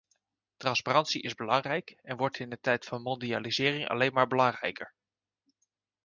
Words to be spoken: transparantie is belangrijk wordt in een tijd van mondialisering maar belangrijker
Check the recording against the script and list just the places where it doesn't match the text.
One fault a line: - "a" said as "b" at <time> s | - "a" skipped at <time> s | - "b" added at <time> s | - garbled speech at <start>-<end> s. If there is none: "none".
- "en" added at 2.0 s
- "alleen" added at 3.9 s